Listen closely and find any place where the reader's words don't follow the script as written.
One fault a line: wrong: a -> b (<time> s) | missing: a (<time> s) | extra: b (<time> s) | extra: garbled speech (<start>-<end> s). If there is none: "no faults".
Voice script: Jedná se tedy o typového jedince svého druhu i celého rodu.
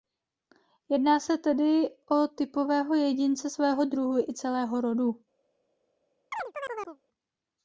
no faults